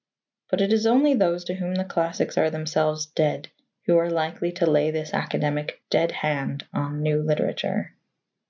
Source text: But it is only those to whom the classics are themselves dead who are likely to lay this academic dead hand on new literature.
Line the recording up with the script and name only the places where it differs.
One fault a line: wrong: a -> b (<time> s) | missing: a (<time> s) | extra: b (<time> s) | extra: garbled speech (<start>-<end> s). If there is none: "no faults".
no faults